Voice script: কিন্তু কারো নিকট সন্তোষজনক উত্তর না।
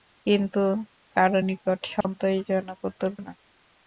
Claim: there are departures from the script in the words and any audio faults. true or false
true